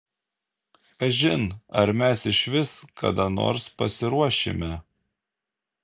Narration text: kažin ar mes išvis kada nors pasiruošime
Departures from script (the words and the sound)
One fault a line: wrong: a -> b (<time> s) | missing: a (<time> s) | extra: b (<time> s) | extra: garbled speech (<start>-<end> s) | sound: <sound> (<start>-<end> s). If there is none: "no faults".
no faults